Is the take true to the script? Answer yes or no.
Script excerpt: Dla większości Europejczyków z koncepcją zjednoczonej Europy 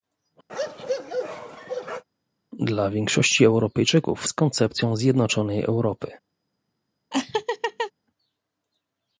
yes